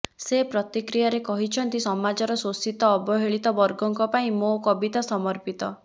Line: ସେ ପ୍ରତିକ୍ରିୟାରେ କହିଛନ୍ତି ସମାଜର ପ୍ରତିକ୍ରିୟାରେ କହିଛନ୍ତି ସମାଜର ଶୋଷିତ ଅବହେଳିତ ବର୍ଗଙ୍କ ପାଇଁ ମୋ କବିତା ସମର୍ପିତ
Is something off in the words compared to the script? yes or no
yes